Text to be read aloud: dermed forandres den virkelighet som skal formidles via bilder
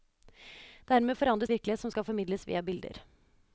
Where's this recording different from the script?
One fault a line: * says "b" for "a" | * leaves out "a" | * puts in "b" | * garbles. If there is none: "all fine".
* leaves out "den"